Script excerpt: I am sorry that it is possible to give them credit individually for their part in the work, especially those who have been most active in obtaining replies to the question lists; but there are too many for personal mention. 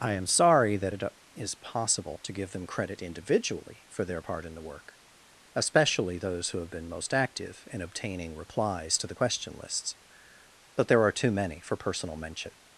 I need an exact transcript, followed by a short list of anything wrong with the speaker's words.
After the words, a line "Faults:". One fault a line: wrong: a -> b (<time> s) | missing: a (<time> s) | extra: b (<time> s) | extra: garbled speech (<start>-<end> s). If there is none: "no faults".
I am sorry that it is possible to give them credit individually for their part in the work, especially those who have been most active in obtaining replies to the question lists; but there are too many for personal mention.
Faults:
no faults